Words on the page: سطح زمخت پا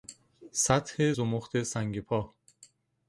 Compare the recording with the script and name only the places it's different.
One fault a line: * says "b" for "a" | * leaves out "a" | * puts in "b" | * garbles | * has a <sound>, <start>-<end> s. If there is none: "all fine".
* puts in "سنگ"